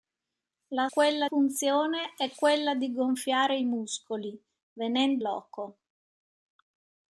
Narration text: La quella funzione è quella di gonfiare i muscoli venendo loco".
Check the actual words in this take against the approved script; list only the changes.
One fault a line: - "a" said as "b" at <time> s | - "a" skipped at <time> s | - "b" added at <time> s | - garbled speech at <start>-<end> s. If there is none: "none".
none